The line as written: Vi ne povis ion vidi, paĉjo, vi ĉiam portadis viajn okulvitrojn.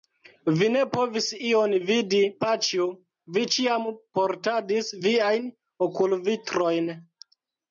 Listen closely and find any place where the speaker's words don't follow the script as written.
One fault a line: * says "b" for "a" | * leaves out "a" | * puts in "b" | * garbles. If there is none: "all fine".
all fine